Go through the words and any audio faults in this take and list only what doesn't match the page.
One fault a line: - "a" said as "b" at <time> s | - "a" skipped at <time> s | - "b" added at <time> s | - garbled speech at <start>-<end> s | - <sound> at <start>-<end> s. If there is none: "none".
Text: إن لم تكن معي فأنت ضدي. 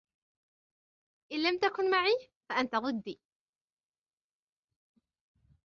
none